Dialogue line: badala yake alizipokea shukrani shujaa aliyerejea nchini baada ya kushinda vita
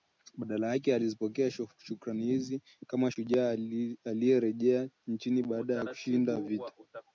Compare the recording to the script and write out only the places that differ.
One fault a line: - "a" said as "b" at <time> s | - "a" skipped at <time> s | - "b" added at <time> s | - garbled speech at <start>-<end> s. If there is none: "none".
- "hizi kama" added at 2.2 s